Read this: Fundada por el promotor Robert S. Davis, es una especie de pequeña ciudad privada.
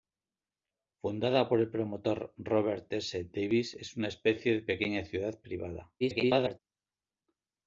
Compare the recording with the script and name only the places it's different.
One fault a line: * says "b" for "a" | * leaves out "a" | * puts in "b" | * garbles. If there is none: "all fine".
* garbles